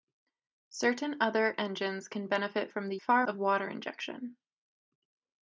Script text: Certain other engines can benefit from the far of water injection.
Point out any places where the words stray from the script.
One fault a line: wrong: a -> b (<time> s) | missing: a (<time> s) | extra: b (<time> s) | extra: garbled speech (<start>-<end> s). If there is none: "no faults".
no faults